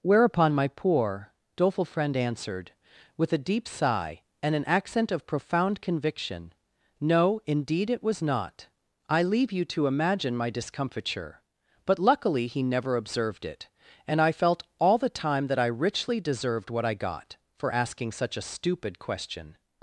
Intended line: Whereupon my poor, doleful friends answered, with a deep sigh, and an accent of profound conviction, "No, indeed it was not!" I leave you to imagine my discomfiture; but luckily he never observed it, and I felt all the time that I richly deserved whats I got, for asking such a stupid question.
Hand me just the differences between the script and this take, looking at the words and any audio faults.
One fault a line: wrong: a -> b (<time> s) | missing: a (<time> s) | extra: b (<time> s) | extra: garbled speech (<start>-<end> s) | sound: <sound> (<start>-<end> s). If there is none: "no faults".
wrong: friends -> friend (1.9 s)
wrong: whats -> what (16.7 s)